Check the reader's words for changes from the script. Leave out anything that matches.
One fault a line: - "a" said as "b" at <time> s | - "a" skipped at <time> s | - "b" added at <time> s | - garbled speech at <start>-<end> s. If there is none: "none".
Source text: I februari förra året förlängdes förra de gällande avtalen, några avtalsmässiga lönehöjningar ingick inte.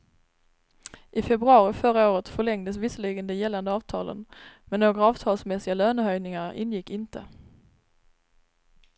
- "förra" said as "visserligen" at 2.8 s
- "men" added at 4.6 s